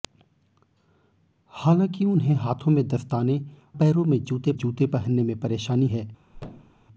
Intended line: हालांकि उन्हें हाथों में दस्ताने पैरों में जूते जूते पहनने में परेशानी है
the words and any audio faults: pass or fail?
fail